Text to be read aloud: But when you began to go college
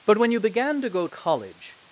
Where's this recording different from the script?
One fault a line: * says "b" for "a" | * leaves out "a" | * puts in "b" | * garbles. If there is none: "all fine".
all fine